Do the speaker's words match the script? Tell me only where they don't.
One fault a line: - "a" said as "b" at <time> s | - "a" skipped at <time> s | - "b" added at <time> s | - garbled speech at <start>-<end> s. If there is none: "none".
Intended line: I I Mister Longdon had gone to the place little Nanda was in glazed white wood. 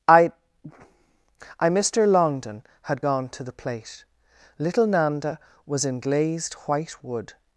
- "place" said as "plate" at 3.5 s